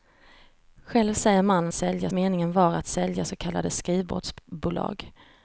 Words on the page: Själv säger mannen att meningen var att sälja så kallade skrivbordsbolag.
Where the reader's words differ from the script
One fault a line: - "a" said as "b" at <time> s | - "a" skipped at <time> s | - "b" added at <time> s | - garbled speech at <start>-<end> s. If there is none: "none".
- "att" said as "sälja" at 1.7 s